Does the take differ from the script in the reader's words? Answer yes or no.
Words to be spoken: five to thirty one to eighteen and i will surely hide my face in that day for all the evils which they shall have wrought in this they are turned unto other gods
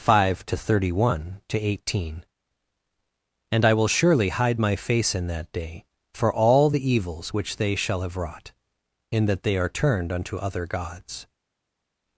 yes